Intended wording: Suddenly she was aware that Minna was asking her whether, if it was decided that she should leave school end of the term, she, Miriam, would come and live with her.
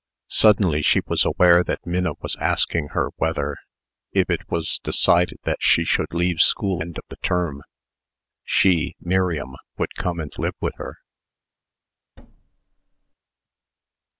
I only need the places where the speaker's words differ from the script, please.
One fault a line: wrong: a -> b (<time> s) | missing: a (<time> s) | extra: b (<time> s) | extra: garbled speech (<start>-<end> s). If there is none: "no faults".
no faults